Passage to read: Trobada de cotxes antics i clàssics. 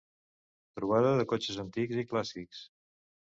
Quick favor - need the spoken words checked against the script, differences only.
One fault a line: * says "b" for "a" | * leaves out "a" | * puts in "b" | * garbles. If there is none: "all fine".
all fine